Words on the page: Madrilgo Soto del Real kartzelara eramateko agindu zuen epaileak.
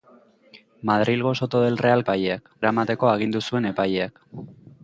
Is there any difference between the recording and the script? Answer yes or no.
yes